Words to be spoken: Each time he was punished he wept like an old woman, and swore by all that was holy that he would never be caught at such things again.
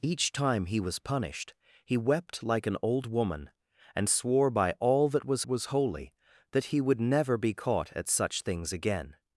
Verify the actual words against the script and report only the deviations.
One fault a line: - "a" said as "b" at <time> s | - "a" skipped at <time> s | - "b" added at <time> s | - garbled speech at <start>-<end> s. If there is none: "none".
- "was" added at 5.5 s